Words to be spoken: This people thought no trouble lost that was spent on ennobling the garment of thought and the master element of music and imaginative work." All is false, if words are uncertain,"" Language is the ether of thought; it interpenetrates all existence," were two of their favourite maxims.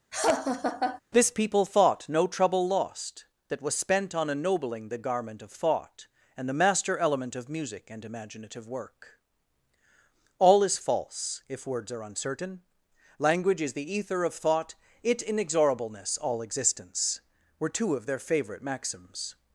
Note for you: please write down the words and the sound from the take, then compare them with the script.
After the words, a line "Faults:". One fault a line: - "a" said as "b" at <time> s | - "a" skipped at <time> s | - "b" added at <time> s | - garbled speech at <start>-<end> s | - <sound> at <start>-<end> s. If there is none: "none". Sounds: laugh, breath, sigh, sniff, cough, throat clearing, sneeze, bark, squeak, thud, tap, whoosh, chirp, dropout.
This people thought no trouble lost that was spent on ennobling the garment of thought and the master element of music and imaginative work." All is false, if words are uncertain,"" Language is the ether of thought; it inexorableness all existence," were two of their favourite maxims.
Faults:
- laugh at 0.1-1.0 s
- "interpenetrates" said as "inexorableness" at 15.2 s